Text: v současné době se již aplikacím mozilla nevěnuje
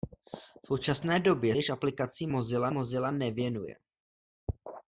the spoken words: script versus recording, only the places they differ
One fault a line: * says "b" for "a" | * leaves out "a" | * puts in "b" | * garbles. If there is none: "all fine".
* leaves out "se"
* puts in "mozilla"